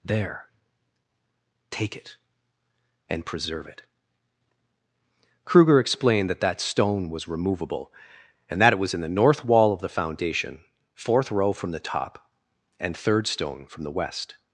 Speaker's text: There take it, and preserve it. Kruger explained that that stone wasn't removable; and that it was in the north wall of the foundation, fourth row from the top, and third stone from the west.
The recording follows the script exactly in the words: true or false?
false